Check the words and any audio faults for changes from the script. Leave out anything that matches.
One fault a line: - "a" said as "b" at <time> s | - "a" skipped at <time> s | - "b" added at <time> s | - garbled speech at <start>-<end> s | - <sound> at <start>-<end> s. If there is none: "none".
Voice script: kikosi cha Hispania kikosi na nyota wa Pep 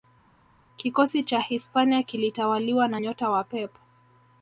- "kikosi" said as "kilitawaliwa" at 2.0 s